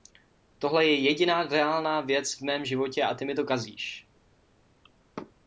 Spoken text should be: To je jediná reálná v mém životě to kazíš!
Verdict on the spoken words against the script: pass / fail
fail